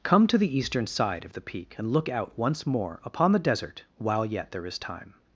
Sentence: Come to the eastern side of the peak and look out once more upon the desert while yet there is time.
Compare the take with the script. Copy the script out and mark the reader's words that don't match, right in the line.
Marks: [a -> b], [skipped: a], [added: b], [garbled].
Come to the eastern side of the peak and look out once more upon the desert while yet there is time.